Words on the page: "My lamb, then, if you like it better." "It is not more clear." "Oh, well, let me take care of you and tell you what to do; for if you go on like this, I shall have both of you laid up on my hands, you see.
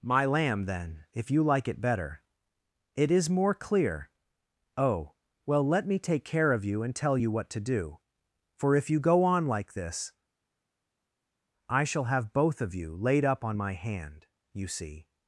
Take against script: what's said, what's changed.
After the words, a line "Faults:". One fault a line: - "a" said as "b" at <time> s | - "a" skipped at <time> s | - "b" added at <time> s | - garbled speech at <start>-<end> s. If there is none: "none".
"My lamb, then, if you like it better." "It is more clear." "Oh, well, let me take care of you and tell you what to do; for if you go on like this, I shall have both of you laid up on my hand, you see.
Faults:
- "not" skipped at 3.3 s
- "hands" said as "hand" at 13.7 s